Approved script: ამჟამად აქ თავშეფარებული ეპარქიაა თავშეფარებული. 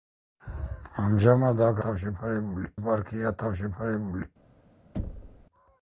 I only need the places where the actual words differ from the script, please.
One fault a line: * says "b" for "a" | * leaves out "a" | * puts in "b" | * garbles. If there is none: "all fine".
all fine